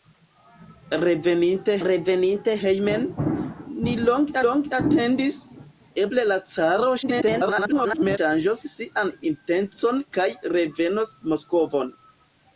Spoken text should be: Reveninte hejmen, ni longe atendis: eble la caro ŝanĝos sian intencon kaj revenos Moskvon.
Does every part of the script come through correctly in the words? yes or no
no